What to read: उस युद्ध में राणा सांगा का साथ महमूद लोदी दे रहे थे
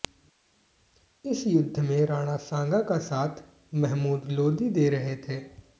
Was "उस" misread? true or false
true